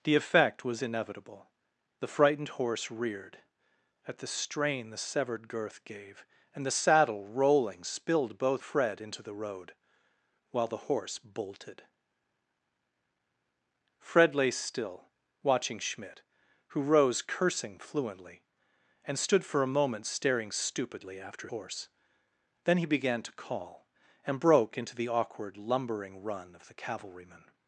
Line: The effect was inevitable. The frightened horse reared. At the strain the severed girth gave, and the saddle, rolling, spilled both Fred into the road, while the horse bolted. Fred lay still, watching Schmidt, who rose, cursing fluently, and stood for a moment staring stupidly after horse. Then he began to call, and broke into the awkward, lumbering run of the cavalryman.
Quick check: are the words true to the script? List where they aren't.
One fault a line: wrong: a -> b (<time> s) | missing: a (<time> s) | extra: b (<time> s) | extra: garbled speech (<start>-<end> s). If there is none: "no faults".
no faults